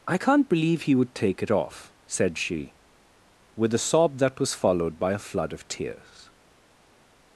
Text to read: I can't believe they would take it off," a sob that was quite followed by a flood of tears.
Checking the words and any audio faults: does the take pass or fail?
fail